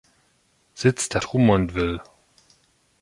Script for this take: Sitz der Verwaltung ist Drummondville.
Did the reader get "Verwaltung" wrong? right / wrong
wrong